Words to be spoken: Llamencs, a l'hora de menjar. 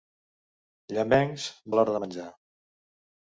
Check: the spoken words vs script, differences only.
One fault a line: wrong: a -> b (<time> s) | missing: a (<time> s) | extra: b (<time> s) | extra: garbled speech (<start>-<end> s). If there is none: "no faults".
no faults